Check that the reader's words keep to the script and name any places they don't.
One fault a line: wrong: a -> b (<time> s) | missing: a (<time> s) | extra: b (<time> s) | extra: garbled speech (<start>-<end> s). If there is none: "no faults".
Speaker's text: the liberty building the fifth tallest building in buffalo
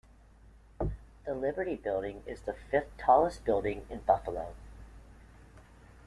extra: is (2.2 s)